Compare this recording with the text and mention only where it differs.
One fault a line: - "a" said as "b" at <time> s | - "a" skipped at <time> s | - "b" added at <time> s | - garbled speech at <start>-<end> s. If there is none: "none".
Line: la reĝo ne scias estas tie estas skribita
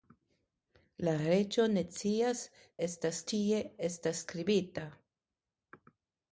none